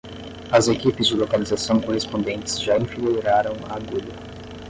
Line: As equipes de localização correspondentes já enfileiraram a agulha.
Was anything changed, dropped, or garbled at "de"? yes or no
no